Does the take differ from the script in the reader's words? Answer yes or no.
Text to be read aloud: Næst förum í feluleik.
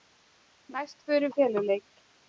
no